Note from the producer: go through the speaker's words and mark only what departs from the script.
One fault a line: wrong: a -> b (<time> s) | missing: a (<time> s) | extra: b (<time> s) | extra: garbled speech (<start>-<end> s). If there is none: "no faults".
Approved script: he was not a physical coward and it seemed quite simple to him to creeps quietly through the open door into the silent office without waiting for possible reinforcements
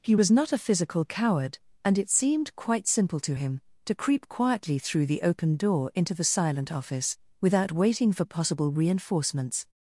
wrong: creeps -> creep (3.9 s)